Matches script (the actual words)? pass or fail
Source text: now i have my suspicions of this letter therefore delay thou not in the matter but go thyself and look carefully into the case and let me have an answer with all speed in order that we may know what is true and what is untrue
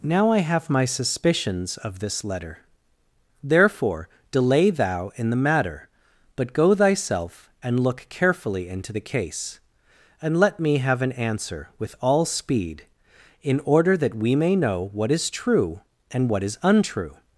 fail